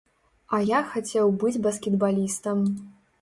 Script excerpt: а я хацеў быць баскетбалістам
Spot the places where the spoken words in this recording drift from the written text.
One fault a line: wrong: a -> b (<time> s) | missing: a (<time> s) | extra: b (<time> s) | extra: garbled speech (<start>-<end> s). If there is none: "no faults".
no faults